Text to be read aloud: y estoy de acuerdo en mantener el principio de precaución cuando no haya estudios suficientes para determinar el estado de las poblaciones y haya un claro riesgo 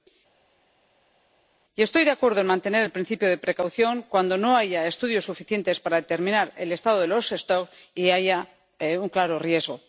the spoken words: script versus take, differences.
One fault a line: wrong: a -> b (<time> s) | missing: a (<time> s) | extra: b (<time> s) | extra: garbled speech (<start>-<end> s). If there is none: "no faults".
no faults